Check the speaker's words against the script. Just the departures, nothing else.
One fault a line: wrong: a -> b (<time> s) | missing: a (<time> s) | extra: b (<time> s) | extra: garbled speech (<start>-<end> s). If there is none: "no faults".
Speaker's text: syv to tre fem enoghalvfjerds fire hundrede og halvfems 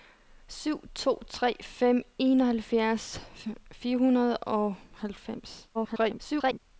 extra: garbled speech (5.7-6.6 s)